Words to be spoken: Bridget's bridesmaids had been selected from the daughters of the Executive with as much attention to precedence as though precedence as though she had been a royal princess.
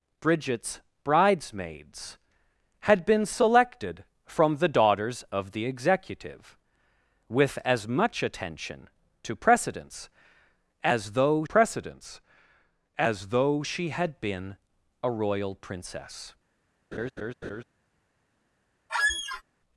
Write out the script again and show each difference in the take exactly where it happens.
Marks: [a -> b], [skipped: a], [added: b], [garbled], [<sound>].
Bridget's bridesmaids had been selected from the daughters of the Executive with as much attention to precedence as though precedence as though she had been a royal princess. [laugh] [squeak]